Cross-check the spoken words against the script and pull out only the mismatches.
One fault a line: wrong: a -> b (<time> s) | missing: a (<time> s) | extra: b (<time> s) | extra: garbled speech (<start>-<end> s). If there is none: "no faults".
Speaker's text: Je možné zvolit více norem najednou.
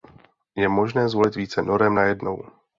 no faults